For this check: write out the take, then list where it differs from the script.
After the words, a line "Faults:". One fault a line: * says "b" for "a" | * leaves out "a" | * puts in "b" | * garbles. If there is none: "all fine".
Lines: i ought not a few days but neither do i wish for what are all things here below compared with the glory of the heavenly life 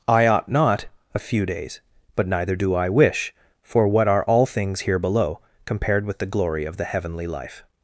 i ought not a few days but neither do i wish for what are all things here below compared with the glory of the heavenly life
Faults:
all fine